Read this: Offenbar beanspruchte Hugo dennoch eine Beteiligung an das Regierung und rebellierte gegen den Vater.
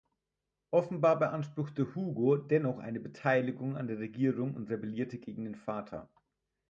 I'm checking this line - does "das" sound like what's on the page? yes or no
no